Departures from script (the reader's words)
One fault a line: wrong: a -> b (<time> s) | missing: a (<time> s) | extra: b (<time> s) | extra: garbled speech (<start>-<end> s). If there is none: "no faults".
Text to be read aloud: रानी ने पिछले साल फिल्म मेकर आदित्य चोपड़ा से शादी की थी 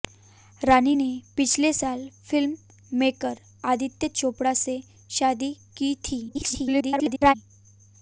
extra: garbled speech (6.3-7.3 s)